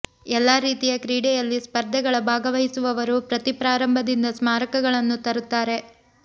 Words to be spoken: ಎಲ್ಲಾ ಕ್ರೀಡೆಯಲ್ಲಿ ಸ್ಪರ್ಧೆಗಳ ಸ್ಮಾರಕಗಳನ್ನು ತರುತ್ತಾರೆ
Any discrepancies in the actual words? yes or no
yes